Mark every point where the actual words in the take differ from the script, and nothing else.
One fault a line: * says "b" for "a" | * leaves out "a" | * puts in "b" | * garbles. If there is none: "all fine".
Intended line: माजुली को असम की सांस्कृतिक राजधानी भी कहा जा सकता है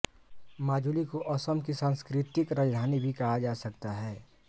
all fine